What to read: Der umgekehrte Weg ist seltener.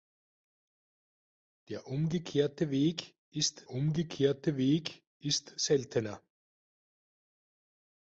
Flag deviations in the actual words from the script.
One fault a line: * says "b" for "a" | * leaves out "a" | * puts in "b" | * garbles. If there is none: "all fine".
* puts in "umgekehrte Weg ist"